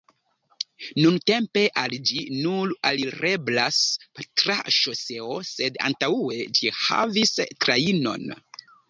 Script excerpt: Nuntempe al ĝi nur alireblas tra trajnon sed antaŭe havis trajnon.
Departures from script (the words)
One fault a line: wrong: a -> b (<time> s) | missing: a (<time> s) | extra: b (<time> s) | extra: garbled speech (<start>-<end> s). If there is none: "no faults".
wrong: trajnon -> ŝoseo (4.8 s)
extra: ĝi (6.6 s)